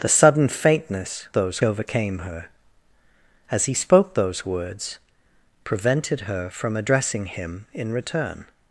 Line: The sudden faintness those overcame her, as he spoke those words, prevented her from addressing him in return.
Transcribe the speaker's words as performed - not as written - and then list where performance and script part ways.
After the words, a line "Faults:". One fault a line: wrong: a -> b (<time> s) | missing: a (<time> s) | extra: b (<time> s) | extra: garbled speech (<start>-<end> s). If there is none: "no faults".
The sudden faintness those overcame her, as he spoke those words, prevented her from addressing him in return.
Faults:
no faults